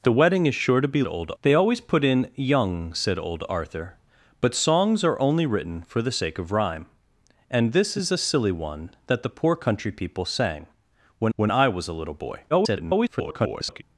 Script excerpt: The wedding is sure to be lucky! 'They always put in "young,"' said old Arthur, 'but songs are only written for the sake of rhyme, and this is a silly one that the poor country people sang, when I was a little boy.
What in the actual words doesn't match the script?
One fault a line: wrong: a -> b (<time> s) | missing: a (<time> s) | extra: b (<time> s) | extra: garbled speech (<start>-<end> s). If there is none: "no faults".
wrong: lucky -> old (1.1 s)
extra: when (11.3 s)
extra: garbled speech (12.5-13.8 s)